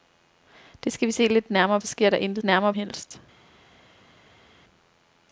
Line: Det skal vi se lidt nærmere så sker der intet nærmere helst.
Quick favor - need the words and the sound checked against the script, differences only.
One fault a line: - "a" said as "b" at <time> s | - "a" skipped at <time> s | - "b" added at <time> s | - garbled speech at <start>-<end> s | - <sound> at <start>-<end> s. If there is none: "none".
none